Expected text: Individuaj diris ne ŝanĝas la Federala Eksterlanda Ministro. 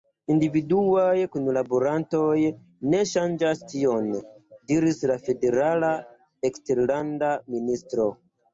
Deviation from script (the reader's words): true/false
true